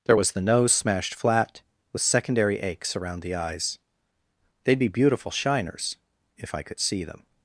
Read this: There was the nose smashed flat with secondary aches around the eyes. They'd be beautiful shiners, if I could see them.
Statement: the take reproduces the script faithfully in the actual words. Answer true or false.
true